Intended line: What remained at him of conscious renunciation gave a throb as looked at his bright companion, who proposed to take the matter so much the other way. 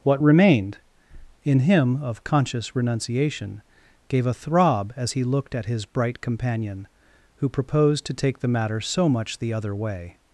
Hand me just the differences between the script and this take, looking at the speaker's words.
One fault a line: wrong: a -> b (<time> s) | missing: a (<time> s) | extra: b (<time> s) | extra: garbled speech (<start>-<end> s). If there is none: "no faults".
wrong: at -> in (1.4 s)
extra: he (5.1 s)